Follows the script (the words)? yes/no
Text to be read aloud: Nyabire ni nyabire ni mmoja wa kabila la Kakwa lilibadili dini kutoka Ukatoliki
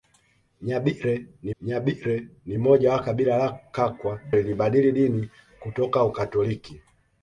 yes